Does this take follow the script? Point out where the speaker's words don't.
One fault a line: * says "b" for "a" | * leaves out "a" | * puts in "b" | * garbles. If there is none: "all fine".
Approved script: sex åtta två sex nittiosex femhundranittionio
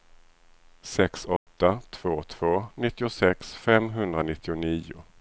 * says "två" for "sex"